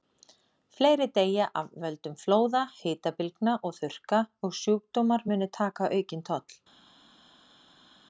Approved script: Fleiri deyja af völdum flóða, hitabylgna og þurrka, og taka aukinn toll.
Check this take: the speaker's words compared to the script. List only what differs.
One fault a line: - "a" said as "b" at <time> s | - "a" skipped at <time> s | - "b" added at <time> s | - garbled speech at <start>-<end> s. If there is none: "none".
- "sjúkdómar munu" added at 4.6 s